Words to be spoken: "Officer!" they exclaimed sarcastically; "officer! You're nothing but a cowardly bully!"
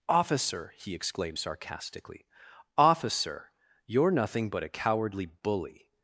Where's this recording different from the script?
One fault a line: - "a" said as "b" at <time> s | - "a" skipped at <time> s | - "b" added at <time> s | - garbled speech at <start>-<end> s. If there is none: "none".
- "they" said as "he" at 0.8 s